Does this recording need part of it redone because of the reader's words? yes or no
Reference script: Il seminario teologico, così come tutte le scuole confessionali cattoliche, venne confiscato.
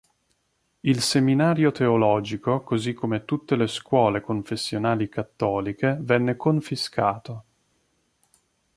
no